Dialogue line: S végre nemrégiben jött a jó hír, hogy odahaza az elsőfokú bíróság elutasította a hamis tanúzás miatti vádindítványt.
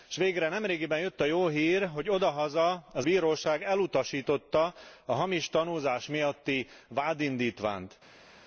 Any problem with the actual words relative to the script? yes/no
yes